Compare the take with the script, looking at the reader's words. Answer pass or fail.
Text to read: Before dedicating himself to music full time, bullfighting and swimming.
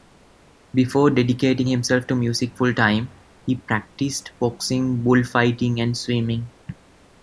fail